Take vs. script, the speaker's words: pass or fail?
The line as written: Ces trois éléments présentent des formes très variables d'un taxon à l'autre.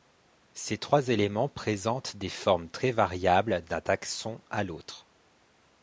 pass